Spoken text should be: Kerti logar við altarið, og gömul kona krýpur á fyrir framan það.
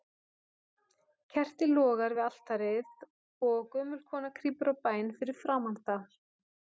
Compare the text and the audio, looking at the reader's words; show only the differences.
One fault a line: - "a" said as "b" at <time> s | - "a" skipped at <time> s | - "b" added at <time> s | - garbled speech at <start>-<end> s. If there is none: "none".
- "bæn" added at 4.9 s